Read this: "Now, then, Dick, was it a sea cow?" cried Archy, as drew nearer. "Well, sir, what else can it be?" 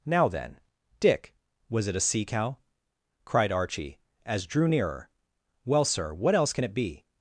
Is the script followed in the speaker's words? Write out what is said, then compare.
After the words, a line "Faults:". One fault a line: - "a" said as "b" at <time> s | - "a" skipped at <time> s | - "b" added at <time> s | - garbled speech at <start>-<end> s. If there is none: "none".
"Now, then, Dick, was it a sea cow?" cried Archy, as drew nearer. "Well, sir, what else can it be?"
Faults:
none